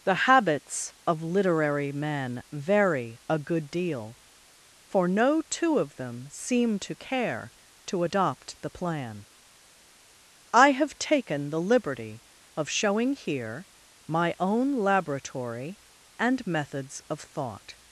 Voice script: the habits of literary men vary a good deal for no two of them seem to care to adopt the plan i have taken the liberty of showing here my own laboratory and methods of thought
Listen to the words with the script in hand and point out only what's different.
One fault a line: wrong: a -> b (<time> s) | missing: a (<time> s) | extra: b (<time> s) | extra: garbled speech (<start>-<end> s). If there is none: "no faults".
no faults